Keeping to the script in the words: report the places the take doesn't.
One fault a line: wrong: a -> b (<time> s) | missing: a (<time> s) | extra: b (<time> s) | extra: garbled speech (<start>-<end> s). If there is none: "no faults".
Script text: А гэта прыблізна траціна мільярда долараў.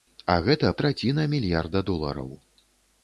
missing: прыблізна (0.7 s)